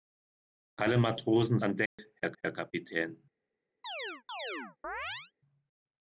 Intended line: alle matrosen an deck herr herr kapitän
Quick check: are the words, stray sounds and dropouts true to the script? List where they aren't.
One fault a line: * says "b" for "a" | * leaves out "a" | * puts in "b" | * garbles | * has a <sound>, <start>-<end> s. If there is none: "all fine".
* has a dropout, 1.9-2.0 s
* has a chirp, 3.8-5.3 s